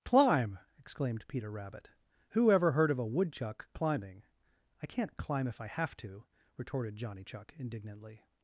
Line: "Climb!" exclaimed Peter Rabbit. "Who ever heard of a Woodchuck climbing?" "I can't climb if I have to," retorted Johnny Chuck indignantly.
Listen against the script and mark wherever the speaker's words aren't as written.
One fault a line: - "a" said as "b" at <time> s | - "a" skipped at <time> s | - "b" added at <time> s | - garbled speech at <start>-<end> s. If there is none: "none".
none